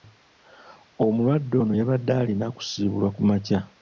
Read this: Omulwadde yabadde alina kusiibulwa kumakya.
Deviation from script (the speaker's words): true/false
true